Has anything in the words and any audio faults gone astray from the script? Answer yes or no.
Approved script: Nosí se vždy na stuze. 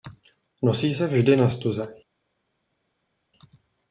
no